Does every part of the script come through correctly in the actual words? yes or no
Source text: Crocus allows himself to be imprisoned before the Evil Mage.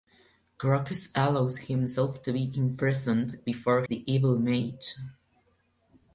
yes